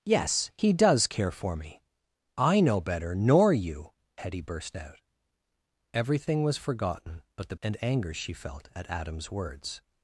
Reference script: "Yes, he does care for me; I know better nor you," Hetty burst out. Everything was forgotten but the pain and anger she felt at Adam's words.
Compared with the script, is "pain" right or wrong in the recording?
wrong